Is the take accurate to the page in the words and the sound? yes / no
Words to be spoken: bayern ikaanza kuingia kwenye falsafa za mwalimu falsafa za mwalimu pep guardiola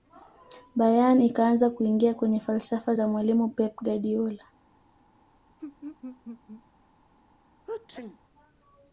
no